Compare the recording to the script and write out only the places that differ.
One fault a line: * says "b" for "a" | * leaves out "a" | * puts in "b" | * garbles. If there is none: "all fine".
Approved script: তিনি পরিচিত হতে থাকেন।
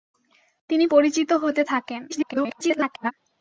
* garbles